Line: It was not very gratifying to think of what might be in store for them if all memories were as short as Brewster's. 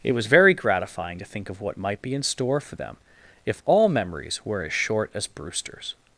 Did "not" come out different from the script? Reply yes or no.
yes